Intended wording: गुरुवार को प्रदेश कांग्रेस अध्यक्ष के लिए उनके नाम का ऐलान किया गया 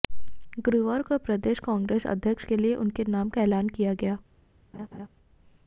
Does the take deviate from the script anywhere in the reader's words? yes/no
no